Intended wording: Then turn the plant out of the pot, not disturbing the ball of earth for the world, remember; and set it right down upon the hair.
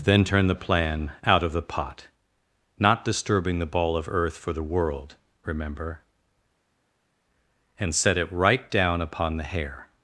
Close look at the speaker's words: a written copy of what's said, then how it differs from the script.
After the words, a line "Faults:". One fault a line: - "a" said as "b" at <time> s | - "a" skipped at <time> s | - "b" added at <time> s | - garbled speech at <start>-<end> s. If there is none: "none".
Then turn the plan out of the pot, not disturbing the ball of earth for the world, remember; and set it right down upon the hair.
Faults:
- "plant" said as "plan" at 0.6 s